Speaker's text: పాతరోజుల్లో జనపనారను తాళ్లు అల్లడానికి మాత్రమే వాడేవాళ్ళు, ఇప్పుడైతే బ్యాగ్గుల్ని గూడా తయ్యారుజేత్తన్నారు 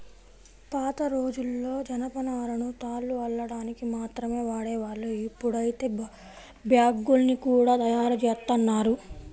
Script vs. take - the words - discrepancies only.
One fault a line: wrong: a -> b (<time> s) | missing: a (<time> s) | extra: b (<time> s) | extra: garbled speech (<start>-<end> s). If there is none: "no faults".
no faults